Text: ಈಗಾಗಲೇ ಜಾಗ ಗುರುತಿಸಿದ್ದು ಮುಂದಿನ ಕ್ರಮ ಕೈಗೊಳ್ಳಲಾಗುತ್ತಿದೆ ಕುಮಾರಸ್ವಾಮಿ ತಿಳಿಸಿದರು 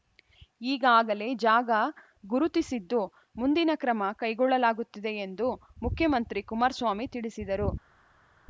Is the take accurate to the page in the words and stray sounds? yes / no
no